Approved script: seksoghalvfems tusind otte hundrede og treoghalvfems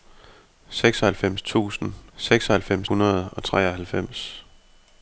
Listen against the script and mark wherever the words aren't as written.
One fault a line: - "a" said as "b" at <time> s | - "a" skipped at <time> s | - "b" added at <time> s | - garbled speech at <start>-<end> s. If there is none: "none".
- "otte" said as "seksoghalvfems" at 2.2 s